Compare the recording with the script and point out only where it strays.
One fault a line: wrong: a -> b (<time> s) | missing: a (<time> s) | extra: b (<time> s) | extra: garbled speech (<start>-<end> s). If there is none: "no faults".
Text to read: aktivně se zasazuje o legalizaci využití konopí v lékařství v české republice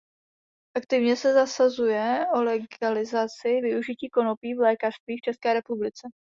no faults